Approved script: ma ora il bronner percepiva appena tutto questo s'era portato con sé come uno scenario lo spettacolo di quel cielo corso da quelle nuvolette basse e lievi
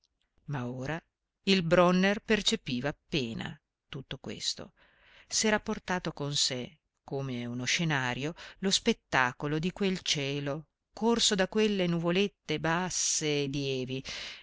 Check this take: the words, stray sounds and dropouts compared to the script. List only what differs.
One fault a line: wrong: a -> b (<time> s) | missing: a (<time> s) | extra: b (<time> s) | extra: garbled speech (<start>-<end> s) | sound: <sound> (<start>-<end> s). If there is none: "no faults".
no faults